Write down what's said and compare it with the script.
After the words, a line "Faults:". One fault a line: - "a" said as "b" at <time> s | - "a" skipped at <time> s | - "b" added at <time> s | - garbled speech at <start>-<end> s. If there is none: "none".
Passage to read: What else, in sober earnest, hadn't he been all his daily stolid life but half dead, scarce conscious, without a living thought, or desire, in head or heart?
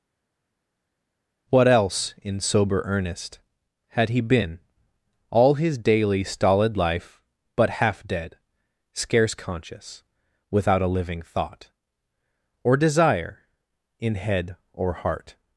What else, in sober earnest, had he been all his daily stolid life but half dead, scarce conscious, without a living thought, or desire, in head or heart?
Faults:
- "hadn't" said as "had" at 3.9 s